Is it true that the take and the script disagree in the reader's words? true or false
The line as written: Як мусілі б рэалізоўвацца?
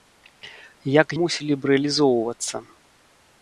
false